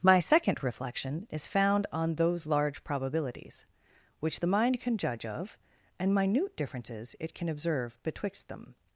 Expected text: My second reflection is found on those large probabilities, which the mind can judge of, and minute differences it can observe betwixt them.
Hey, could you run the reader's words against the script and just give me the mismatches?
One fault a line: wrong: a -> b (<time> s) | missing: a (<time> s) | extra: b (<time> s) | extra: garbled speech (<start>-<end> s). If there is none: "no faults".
no faults